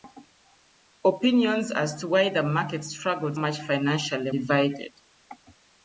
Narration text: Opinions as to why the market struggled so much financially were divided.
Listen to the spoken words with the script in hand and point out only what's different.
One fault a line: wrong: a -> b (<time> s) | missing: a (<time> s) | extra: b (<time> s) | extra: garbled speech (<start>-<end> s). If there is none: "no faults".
missing: so (3.4 s)
missing: were (4.3 s)